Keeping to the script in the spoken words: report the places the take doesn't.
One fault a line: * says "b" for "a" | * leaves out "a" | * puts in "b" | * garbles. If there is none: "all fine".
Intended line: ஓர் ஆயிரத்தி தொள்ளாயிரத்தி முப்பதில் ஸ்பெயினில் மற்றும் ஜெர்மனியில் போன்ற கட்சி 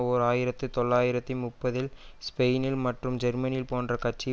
all fine